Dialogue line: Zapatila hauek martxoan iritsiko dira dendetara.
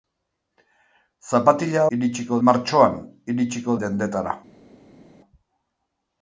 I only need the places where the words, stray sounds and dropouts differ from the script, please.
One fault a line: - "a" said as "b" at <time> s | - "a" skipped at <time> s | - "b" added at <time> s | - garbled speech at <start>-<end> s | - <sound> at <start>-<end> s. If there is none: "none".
- "hauek" said as "iritsiko" at 2.0 s
- "dira" skipped at 3.8 s